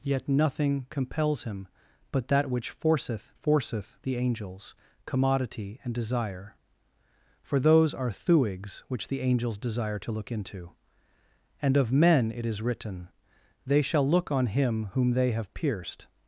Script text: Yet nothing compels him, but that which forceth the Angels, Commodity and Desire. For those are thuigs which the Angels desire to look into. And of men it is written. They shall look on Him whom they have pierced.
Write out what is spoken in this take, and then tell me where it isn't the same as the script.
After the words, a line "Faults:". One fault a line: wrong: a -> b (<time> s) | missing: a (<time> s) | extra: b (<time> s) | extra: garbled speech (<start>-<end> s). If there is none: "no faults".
Yet nothing compels him, but that which forceth forceth the Angels, Commodity and Desire. For those are thuigs which the Angels desire to look into. And of men it is written. They shall look on Him whom they have pierced.
Faults:
extra: forceth (3.3 s)